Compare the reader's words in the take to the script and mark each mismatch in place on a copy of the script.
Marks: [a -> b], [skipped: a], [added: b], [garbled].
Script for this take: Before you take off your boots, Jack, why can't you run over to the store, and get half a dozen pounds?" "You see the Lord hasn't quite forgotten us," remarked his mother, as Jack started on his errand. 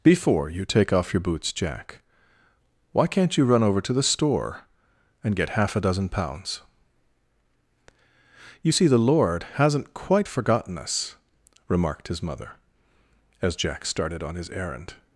Before you take off your boots, Jack, why can't you run over to the store, and get half a dozen pounds?" "You see the Lord hasn't quite forgotten us," remarked his mother, as Jack started on his errand.